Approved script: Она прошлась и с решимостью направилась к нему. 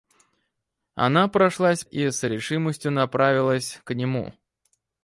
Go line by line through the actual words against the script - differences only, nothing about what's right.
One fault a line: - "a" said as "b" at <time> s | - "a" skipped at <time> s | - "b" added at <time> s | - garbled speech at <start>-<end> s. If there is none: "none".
none